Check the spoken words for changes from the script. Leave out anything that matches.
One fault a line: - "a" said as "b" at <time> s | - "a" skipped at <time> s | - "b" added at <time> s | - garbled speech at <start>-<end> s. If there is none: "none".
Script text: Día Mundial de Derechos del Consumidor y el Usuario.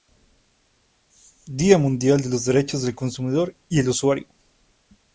- "los" added at 2.3 s